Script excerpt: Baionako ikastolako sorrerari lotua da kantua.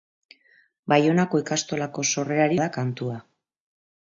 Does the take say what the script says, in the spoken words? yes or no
no